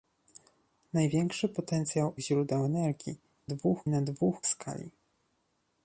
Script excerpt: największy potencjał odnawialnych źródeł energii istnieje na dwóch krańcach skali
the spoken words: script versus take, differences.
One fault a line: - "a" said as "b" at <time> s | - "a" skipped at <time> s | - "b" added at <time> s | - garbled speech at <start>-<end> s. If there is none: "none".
- "odnawialnych" skipped at 2.1 s
- "istnieje" said as "dwóch" at 3.4 s
- "krańcach" skipped at 4.4 s